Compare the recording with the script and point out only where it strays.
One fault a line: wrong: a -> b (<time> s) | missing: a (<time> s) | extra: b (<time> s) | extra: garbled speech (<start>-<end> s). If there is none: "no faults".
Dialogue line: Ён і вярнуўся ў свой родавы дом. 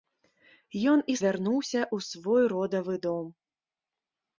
no faults